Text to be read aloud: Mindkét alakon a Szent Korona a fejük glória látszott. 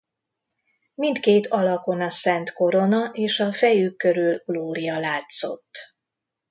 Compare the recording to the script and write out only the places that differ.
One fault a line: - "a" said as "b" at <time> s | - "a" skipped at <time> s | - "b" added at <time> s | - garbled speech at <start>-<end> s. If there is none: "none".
- "és" added at 3.1 s
- "körül" added at 4.0 s